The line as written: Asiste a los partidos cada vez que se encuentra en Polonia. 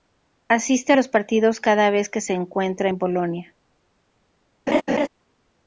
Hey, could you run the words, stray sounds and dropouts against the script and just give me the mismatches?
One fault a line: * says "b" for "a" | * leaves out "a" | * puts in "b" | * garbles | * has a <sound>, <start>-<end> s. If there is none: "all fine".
* has a laugh, 4.7-5.1 s